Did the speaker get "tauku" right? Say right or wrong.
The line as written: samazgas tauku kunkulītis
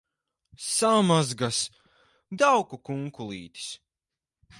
right